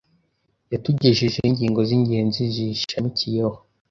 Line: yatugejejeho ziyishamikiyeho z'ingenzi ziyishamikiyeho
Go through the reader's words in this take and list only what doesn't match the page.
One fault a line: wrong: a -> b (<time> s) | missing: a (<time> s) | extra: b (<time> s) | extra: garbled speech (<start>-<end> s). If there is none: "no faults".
wrong: ziyishamikiyeho -> ingingo (1.5 s)